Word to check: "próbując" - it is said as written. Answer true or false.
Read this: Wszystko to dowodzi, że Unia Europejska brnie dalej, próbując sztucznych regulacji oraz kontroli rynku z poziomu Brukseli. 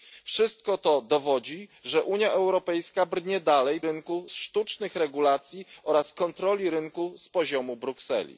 false